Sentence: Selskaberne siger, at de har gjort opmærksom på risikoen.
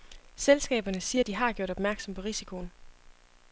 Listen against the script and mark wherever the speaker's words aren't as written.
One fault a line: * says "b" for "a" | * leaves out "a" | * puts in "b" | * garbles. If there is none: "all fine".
all fine